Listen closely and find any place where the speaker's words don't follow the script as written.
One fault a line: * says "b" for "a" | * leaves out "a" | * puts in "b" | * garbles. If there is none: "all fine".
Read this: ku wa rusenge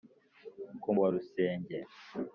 all fine